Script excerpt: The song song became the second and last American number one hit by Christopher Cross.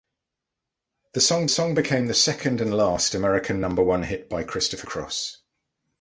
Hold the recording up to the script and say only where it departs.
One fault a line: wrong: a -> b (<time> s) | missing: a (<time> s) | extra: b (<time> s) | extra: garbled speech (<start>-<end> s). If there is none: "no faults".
no faults